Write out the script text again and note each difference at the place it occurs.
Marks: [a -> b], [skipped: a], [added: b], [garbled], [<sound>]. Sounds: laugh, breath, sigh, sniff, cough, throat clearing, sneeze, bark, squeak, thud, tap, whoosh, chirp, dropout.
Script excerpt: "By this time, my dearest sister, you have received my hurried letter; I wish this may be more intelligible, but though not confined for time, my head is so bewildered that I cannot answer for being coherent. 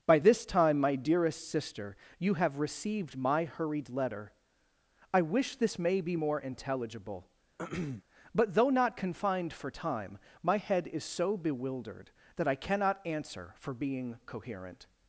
"By this time, my dearest sister, you have received my hurried letter; I wish this may be more intelligible, [throat clearing] but though not confined for time, my head is so bewildered that I cannot answer for being coherent.